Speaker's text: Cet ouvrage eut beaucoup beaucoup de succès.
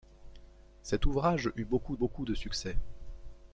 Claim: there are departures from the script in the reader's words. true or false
false